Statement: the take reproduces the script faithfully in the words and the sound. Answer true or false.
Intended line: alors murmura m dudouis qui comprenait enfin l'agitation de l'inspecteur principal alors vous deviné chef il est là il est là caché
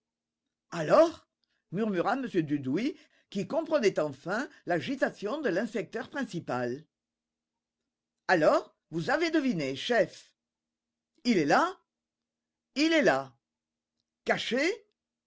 false